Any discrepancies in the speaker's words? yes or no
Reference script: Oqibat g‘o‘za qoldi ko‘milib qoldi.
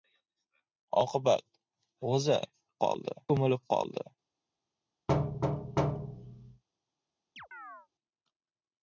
no